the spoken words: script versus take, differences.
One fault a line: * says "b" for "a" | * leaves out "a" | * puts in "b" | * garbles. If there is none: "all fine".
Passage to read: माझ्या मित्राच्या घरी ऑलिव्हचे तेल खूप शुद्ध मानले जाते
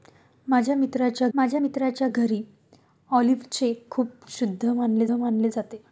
* puts in "माझ्या मित्राच्या"
* leaves out "तेल"
* puts in "मानले"